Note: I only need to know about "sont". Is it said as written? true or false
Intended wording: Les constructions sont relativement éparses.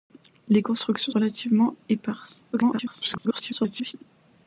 false